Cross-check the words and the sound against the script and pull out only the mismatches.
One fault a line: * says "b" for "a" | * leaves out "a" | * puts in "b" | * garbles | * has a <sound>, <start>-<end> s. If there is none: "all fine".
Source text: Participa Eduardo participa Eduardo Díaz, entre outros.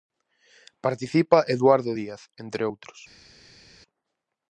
* leaves out "participa Eduardo"